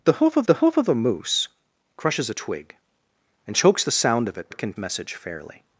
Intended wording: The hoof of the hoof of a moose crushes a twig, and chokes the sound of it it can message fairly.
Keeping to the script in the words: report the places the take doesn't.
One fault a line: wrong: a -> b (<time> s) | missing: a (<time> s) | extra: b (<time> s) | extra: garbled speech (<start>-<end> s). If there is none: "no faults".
no faults